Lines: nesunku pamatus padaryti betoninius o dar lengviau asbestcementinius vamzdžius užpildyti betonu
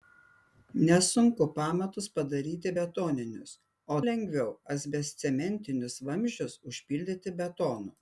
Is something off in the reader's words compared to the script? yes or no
yes